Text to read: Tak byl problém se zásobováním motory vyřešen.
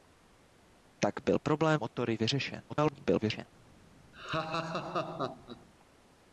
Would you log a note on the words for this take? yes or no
yes